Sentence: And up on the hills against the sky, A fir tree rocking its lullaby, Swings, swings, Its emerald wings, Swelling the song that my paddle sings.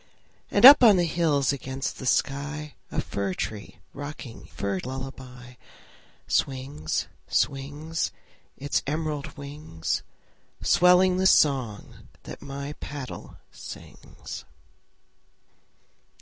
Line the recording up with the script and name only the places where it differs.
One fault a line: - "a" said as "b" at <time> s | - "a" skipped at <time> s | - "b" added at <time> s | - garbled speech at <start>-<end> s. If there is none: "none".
- "its" said as "fir" at 4.5 s